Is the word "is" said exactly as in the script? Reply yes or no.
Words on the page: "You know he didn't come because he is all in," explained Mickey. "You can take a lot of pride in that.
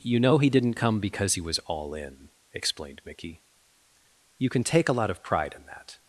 no